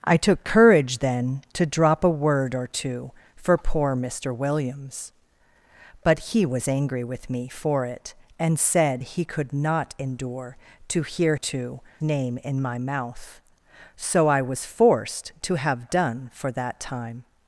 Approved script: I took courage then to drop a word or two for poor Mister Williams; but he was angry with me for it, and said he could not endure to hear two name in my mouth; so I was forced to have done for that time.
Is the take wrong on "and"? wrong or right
right